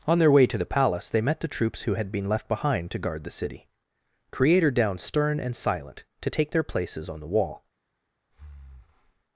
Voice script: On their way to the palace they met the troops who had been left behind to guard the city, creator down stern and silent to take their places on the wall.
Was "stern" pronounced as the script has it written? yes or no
yes